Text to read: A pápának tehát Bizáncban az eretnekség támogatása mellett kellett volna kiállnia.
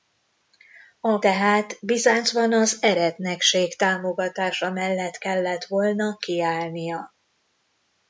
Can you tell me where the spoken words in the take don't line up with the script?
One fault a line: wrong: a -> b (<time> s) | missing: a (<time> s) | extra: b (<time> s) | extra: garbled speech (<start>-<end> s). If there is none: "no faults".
missing: pápának (1.2 s)